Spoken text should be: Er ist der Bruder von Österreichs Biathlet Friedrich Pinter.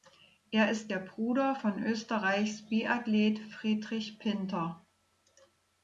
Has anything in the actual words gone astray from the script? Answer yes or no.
no